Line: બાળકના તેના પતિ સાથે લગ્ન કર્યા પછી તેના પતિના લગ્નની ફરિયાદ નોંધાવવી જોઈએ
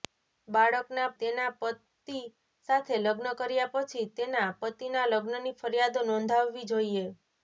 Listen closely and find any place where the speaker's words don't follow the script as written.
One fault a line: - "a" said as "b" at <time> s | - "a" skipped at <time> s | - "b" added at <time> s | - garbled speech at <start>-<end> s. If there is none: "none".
none